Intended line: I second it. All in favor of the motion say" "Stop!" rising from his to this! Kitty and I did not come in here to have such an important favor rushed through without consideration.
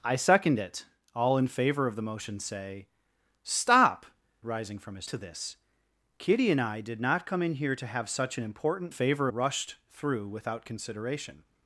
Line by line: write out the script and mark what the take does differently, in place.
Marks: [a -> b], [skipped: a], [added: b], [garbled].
I second it. All in favor of the motion say" "Stop!" rising from his to this! Kitty and I did not come in here to have such an important favor rushed through without consideration.